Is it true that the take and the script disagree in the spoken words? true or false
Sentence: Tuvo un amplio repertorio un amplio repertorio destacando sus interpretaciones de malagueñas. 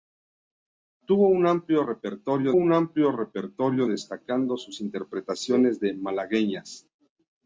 false